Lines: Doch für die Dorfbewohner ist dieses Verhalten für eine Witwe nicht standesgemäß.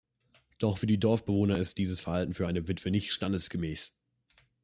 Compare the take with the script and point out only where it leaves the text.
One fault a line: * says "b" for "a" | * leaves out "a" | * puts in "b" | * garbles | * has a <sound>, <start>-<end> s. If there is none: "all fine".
all fine